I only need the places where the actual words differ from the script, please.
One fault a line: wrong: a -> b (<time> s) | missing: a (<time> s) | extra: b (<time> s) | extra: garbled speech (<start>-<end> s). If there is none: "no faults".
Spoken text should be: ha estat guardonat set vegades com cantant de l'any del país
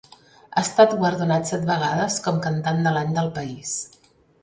no faults